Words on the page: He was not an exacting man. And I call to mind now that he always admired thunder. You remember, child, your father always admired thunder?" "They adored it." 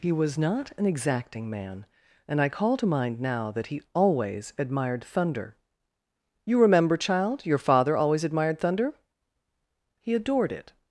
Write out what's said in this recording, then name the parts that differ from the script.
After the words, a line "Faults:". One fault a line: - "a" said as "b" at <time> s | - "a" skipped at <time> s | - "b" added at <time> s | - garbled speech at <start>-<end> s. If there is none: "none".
He was not an exacting man. And I call to mind now that he always admired thunder. You remember, child, your father always admired thunder?" "He adored it."
Faults:
- "They" said as "He" at 10.0 s